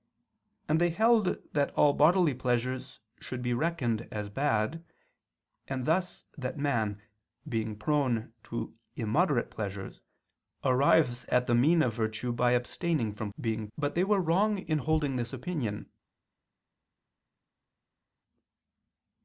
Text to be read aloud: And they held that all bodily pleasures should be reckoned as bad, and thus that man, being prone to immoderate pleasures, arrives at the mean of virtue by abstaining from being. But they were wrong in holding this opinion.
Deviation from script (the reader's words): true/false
false